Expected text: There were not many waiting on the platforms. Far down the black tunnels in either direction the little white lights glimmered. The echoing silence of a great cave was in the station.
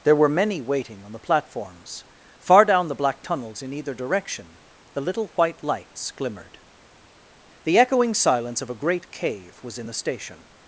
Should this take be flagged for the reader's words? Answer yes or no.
yes